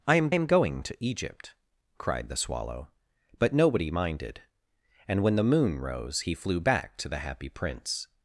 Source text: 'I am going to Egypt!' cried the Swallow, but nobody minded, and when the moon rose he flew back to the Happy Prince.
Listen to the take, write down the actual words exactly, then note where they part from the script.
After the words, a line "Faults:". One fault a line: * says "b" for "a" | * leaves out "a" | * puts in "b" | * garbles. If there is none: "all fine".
'I am am going to Egypt!' cried the Swallow, but nobody minded, and when the moon rose he flew back to the Happy Prince.
Faults:
* puts in "am"